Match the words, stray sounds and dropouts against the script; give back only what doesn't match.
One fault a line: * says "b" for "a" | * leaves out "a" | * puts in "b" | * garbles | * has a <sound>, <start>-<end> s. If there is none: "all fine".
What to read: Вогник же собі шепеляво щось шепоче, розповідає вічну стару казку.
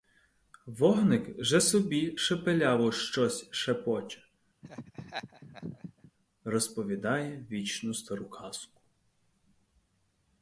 * has a laugh, 4.6-6.1 s